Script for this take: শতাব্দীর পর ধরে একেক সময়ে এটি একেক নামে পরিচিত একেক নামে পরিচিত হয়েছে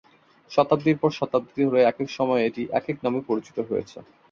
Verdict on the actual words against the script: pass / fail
fail